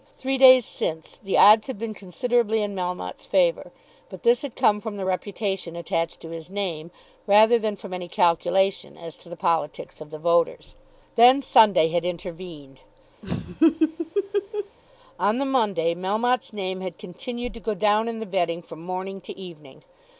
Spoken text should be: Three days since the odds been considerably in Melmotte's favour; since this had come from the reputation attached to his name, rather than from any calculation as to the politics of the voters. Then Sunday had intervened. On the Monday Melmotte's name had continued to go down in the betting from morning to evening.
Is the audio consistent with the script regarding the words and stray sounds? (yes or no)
no